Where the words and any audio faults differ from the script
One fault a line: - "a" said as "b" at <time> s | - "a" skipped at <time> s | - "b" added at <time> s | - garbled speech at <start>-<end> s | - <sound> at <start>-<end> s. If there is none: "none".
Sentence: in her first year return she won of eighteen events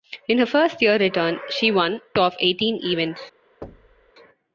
- thud at 3.6-4.1 s